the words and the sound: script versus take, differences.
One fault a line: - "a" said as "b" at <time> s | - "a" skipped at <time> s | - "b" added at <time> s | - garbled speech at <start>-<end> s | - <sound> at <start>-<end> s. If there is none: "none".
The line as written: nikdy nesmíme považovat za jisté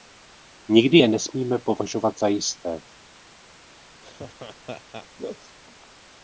- "je" added at 0.9 s
- laugh at 4.0-5.6 s